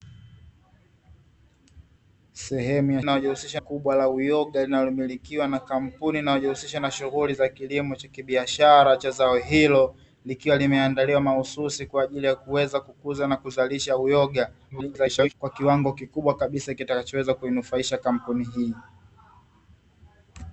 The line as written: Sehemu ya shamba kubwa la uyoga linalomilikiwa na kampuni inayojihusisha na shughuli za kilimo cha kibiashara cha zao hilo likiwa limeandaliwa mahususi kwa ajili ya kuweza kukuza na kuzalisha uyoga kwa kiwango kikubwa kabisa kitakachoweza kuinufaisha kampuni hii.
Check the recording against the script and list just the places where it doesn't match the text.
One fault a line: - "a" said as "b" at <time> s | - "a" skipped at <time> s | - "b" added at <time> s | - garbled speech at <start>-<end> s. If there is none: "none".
- "shamba" said as "inayojihusisha" at 3.0 s
- garbled speech at 14.7-15.3 s